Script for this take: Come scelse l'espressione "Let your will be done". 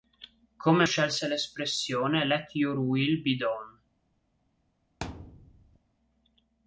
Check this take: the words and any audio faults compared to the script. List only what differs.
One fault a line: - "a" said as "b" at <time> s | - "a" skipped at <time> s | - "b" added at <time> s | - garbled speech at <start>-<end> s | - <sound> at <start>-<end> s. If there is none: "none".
- thud at 5.0-5.8 s